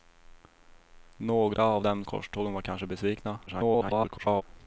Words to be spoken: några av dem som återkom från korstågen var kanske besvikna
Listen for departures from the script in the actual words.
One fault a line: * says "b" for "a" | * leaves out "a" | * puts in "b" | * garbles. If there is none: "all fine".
* leaves out "som återkom från"
* garbles